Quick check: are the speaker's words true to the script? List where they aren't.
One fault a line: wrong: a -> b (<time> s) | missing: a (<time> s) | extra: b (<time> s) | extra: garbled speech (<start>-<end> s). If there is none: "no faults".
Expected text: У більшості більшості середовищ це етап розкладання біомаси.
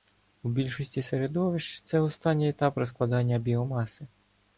missing: більшості (1.0 s)
extra: останній (2.0 s)